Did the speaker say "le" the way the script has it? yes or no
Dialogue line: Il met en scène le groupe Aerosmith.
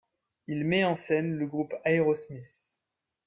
yes